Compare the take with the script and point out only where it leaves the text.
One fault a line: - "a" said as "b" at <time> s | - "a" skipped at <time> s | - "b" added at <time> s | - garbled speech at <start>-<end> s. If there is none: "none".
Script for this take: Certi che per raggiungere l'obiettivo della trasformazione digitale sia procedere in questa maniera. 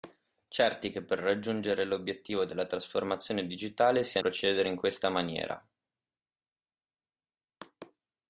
none